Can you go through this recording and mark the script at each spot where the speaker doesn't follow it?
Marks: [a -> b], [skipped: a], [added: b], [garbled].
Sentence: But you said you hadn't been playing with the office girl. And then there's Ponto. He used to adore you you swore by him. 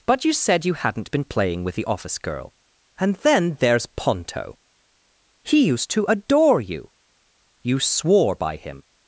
But you said you hadn't been playing with the office girl. And then there's Ponto. He used to adore you you swore by him.